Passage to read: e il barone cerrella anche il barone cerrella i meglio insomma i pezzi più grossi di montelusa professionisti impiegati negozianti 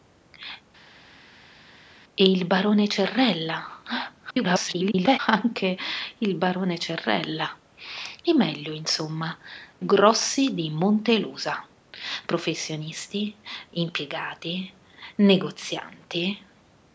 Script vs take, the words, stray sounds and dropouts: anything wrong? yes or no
yes